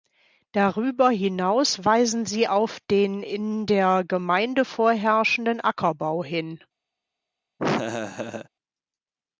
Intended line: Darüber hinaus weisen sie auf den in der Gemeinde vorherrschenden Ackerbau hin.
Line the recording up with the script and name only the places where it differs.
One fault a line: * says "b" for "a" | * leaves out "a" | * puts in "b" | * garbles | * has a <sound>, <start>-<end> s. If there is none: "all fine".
* has a laugh, 7.6-8.5 s